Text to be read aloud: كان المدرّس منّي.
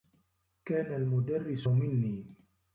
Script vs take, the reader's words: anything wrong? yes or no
no